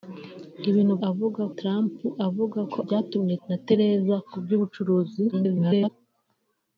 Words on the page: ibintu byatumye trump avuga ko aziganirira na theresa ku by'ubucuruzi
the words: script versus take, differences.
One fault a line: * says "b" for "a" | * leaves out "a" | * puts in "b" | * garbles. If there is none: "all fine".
* says "avuga" for "byatumye"
* says "byatumye" for "aziganirira"
* garbles